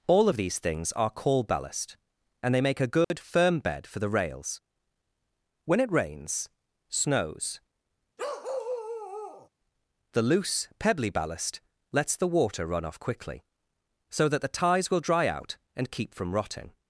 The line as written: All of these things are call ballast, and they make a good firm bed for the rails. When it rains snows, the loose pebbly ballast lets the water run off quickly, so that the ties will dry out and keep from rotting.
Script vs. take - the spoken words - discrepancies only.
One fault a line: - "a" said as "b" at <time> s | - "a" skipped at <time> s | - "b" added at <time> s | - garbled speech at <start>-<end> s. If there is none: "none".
none